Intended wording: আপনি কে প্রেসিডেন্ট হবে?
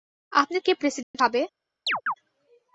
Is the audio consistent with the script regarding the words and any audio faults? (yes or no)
no